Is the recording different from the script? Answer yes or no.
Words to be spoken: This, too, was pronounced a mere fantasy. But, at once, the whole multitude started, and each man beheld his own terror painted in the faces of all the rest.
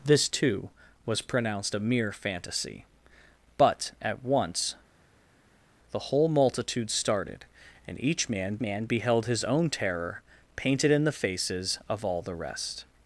yes